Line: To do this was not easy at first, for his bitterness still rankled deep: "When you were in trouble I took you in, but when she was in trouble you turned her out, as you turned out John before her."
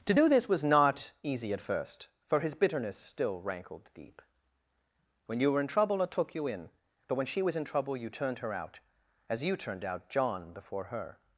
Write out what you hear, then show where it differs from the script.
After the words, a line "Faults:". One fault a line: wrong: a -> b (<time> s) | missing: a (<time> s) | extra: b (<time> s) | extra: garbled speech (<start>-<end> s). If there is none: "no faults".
To do this was not easy at first, for his bitterness still rankled deep: "When you were in trouble I took you in, but when she was in trouble you turned her out, as you turned out John before her."
Faults:
no faults